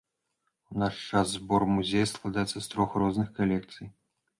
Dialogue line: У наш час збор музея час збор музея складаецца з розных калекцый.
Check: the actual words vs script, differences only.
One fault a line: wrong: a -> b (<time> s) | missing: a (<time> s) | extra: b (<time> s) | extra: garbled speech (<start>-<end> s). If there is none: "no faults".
missing: час збор музея (2.1 s)
extra: трох (2.8 s)